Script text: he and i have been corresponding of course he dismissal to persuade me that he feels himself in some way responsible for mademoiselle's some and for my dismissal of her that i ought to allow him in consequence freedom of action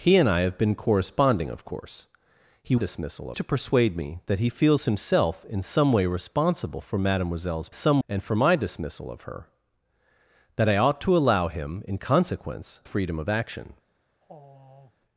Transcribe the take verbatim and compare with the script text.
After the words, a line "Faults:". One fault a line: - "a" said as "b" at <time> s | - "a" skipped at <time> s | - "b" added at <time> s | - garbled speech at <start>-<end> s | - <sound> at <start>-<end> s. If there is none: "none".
he and i have been corresponding of course he dismissal to persuade me that he feels himself in some way responsible for mademoiselle's some and for my dismissal of her that i ought to allow him in consequence freedom of action
Faults:
- sigh at 14.2-15.0 s